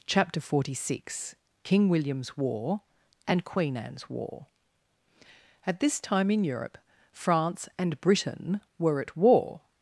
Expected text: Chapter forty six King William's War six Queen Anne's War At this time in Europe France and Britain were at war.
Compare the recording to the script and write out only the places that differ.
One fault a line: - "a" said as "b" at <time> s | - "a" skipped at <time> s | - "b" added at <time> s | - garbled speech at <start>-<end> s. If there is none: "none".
- "six" said as "and" at 3.3 s